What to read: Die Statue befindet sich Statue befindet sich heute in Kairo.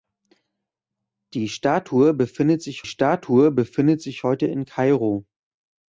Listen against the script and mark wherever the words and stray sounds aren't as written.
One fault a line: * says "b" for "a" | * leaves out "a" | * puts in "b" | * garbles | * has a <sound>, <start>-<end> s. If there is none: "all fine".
all fine